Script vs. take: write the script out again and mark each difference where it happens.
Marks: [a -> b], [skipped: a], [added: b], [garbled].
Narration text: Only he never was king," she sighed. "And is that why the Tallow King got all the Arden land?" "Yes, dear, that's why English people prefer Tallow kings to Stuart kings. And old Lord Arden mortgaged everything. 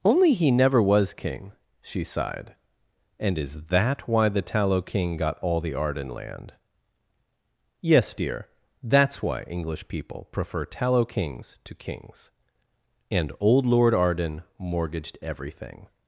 Only he never was king," she sighed. "And is that why the Tallow King got all the Arden land?" "Yes, dear, that's why English people prefer Tallow kings to [skipped: Stuart] kings. And old Lord Arden mortgaged everything.